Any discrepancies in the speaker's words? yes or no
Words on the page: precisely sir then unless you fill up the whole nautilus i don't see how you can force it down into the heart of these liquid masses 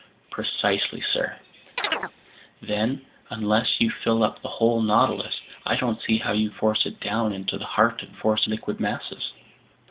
yes